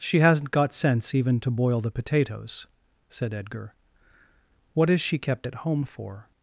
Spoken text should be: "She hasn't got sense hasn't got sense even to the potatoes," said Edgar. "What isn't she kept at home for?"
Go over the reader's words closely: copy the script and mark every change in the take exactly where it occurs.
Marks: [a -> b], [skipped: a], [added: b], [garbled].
"She hasn't got sense [skipped: hasn't got sense] even to [added: boil] the potatoes," said Edgar. "What [isn't -> is] she kept at home for?"